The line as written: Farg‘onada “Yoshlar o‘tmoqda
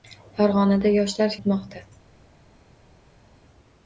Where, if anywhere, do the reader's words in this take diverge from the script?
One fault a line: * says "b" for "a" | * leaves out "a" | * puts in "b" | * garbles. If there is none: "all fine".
all fine